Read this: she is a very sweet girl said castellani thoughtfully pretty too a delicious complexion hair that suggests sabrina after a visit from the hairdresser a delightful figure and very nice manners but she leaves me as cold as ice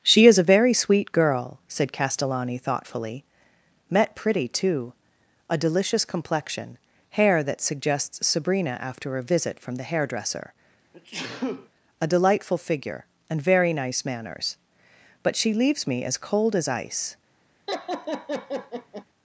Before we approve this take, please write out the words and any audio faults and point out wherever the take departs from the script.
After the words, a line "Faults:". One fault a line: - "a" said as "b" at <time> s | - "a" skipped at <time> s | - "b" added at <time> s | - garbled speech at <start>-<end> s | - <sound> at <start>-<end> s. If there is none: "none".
she is a very sweet girl said castellani thoughtfully met pretty too a delicious complexion hair that suggests sabrina after a visit from the hairdresser a delightful figure and very nice manners but she leaves me as cold as ice
Faults:
- "met" added at 3.9 s
- sneeze at 10.9-11.7 s
- laugh at 17.7-19.1 s